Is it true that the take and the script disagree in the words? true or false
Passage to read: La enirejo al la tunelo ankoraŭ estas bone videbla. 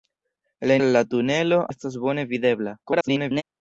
true